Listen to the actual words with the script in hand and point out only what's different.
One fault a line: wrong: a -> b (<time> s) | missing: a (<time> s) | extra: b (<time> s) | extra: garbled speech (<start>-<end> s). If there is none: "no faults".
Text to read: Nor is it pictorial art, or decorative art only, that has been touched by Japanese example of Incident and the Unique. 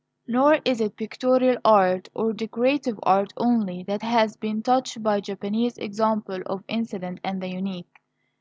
no faults